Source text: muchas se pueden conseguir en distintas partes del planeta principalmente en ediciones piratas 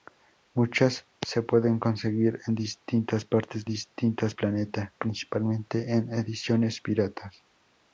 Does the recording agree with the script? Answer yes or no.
no